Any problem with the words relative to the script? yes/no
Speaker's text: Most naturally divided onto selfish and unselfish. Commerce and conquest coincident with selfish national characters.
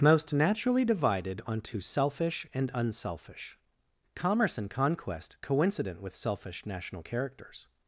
no